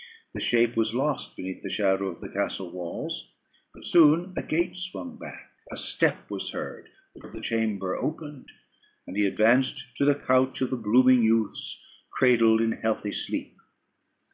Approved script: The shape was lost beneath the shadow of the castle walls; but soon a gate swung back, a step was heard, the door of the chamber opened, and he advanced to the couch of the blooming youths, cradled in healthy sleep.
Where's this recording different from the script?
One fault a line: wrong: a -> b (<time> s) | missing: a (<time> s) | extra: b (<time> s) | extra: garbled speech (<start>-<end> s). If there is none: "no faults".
missing: door (7.2 s)